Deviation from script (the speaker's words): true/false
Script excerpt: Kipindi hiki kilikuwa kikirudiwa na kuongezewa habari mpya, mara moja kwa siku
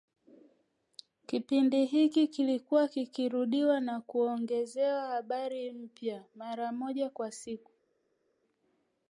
false